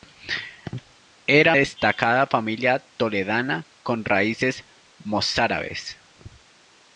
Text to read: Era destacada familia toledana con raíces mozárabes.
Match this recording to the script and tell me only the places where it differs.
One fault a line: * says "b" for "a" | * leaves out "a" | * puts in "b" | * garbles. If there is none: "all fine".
all fine